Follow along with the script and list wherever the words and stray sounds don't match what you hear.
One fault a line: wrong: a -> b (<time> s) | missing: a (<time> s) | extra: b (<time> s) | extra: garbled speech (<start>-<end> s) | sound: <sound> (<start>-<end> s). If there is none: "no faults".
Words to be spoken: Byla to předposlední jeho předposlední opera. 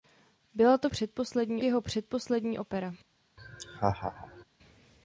sound: laugh (3.4-4.4 s)